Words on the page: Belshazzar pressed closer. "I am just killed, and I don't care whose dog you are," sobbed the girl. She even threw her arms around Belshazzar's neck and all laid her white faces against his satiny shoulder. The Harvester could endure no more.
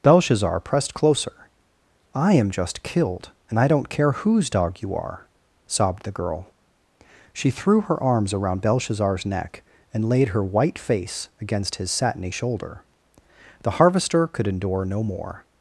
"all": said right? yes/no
no